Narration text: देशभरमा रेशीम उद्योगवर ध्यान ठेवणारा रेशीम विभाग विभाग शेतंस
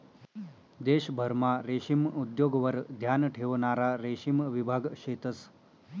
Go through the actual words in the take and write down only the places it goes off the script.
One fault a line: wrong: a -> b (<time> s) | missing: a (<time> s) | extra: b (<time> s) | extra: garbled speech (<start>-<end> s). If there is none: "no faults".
missing: विभाग (4.9 s)